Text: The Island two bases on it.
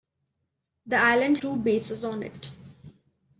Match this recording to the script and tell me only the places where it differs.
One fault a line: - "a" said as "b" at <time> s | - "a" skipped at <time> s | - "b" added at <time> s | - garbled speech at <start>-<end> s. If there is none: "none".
none